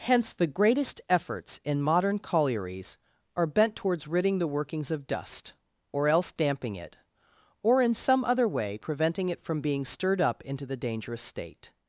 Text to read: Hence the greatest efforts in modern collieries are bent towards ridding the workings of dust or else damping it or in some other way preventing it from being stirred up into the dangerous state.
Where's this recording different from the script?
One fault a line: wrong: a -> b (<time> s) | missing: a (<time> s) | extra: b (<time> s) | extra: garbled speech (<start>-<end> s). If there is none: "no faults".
no faults